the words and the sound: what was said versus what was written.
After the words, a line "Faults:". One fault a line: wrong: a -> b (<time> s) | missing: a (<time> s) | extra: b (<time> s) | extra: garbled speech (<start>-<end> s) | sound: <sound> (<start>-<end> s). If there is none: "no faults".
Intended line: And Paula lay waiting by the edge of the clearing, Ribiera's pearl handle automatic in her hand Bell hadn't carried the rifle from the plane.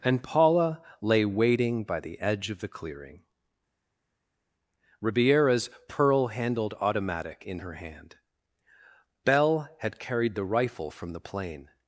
And Paula lay waiting by the edge of the clearing, Ribiera's pearl handled automatic in her hand Bell had carried the rifle from the plane.
Faults:
wrong: handle -> handled (6.3 s)
wrong: hadn't -> had (9.8 s)